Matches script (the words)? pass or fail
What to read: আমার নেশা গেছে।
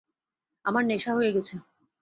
fail